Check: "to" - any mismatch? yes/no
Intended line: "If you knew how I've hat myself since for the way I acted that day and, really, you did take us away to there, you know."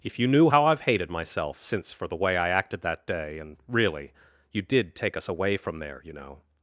yes